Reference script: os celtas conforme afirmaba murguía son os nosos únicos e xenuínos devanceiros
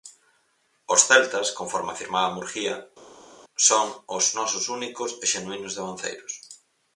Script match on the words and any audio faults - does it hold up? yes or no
yes